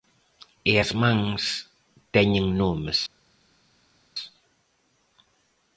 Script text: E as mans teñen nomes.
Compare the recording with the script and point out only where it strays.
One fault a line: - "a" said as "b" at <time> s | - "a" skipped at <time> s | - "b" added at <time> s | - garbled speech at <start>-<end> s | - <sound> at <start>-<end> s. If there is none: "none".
none